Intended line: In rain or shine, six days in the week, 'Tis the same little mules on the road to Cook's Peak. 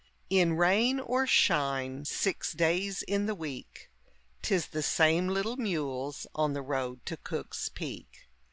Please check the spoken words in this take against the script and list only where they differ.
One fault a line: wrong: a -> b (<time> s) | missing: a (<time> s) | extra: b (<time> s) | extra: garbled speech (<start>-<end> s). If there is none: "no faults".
no faults